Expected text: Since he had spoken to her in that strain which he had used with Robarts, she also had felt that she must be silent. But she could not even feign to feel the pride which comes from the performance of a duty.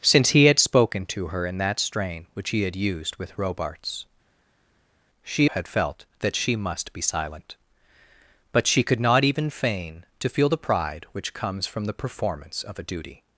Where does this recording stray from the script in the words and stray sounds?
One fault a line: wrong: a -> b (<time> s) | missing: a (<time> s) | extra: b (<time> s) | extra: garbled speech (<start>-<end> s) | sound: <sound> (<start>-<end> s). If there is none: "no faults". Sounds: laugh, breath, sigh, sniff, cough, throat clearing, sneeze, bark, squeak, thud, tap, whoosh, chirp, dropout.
missing: also (5.5 s)